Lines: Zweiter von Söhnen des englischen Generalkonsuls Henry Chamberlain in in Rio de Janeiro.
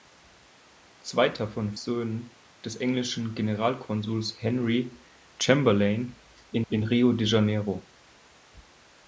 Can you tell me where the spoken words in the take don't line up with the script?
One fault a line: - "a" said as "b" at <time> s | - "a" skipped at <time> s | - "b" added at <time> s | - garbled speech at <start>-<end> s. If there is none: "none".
none